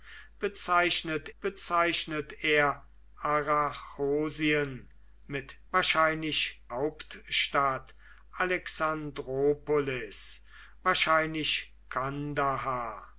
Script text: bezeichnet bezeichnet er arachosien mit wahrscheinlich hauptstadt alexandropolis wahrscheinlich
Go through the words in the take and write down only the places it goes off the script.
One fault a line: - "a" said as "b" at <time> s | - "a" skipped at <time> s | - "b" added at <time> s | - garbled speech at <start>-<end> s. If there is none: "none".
none